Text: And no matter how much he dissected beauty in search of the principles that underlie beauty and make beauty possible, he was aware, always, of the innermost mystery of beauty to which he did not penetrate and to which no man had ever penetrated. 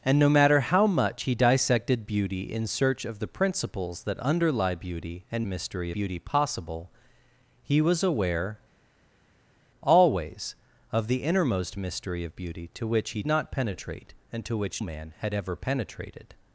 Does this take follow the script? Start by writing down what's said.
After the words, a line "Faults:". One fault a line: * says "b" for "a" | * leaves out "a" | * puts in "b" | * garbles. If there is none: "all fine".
And no matter how much he dissected beauty in search of the principles that underlie beauty and mystery beauty possible, he was aware, always, of the innermost mystery of beauty to which he not penetrate and to which man had ever penetrated.
Faults:
* says "mystery" for "make"
* leaves out "did"
* leaves out "no"